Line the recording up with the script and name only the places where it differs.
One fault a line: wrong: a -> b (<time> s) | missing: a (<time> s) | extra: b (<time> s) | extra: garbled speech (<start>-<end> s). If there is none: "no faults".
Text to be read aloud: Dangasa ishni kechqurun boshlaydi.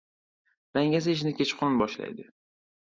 no faults